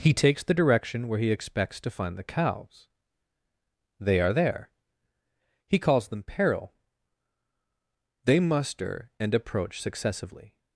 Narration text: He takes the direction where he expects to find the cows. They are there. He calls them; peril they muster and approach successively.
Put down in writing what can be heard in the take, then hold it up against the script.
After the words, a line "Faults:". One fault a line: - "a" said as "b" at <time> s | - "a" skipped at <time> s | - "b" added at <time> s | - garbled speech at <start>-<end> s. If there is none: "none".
He takes the direction where he expects to find the cows. They are there. He calls them; peril they muster and approach successively.
Faults:
none